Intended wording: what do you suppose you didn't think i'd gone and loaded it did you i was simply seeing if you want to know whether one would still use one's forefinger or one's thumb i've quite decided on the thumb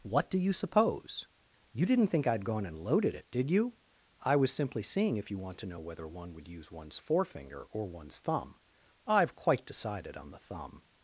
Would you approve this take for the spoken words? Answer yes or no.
no